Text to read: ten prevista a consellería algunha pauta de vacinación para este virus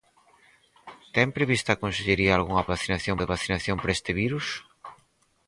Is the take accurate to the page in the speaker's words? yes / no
no